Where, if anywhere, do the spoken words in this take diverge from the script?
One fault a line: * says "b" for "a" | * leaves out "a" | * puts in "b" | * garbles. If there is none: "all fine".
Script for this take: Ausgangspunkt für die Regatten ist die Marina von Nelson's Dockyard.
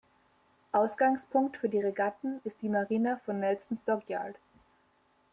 all fine